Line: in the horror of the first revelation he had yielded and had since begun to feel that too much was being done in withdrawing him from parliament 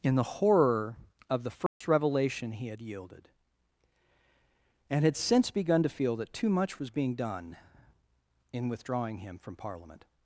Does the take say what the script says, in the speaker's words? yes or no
yes